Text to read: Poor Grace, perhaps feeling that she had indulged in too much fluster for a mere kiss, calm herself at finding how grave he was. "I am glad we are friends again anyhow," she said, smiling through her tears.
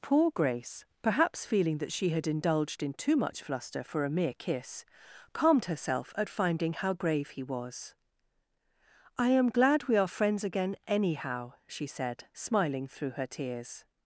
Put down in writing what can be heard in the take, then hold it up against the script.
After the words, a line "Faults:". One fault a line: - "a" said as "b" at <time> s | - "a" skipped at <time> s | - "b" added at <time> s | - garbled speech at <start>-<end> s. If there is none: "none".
Poor Grace, perhaps feeling that she had indulged in too much fluster for a mere kiss, calmed herself at finding how grave he was. "I am glad we are friends again anyhow," she said, smiling through her tears.
Faults:
- "calm" said as "calmed" at 5.3 s